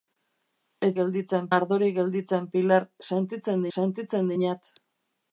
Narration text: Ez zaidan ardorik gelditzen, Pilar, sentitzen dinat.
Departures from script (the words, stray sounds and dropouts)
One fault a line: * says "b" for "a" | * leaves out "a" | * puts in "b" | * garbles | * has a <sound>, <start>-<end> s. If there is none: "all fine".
* says "gelditzen" for "zaidan"
* puts in "sentitzen"